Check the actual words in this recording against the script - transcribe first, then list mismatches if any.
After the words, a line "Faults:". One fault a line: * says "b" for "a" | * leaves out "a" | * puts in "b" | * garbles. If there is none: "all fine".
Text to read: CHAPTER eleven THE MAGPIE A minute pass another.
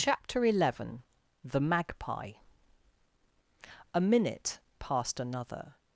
CHAPTER eleven THE MAGPIE A minute passed another.
Faults:
* says "passed" for "pass"